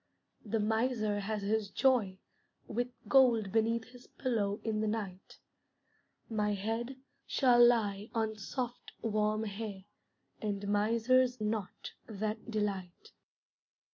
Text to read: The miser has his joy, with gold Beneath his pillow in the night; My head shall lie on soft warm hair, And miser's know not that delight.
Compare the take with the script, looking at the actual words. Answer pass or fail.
fail